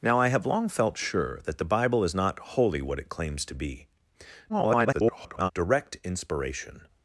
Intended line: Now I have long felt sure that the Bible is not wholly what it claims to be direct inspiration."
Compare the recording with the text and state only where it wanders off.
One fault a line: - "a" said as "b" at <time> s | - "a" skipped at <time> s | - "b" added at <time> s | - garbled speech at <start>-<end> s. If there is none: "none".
- garbled speech at 4.5-5.5 s